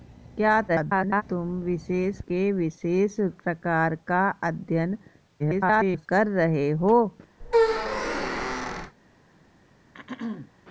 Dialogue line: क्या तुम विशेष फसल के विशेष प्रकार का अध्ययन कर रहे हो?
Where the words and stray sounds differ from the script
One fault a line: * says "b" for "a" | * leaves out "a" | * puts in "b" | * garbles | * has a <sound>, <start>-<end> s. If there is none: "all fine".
* garbles
* leaves out "फसल"
* garbles
* has a squeak, 7.4-8.9 s
* has a throat clearing, 9.9-10.5 s